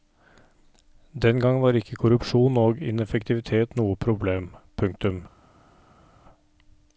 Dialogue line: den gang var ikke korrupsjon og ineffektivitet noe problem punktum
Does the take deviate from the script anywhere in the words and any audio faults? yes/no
no